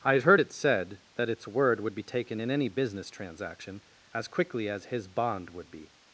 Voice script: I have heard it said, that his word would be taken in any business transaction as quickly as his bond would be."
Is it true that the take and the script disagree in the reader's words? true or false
true